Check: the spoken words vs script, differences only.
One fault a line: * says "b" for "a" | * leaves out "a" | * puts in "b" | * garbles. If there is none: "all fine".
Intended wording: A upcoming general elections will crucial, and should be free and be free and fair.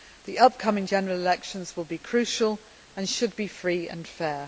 * says "The" for "A"
* puts in "be"
* leaves out "be free and"